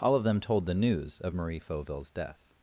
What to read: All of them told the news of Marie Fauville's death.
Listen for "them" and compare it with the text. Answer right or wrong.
right